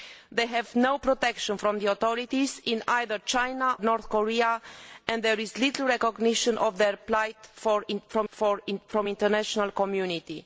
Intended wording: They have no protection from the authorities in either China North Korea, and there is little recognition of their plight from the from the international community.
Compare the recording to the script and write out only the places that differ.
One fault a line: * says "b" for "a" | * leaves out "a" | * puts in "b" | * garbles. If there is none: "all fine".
all fine